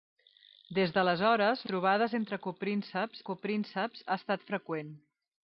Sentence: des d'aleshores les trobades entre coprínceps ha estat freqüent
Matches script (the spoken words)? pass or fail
fail